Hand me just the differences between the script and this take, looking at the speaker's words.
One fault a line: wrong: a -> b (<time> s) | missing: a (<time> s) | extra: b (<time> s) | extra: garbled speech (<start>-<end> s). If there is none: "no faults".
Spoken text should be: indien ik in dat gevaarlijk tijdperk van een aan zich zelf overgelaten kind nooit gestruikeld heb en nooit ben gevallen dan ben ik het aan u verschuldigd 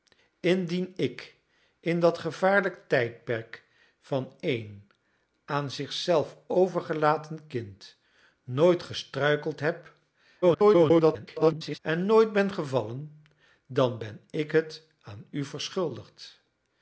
extra: garbled speech (10.4-11.8 s)